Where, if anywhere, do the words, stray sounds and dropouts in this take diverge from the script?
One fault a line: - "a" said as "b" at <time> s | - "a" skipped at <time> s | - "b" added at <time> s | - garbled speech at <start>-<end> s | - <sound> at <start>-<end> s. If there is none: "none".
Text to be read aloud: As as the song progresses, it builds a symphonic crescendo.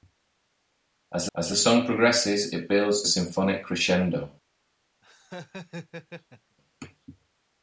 - laugh at 5.0-6.6 s